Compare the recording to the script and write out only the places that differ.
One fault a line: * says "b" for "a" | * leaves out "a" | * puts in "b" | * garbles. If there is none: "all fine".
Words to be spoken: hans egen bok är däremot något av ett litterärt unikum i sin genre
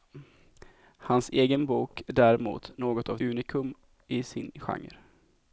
* leaves out "ett litterärt"